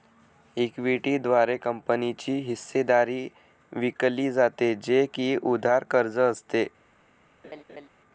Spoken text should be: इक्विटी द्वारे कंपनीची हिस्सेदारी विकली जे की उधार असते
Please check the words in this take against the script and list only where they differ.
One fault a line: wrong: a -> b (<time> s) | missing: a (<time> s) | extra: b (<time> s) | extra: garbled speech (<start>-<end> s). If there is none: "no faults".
extra: जाते (4.3 s)
extra: कर्ज (5.8 s)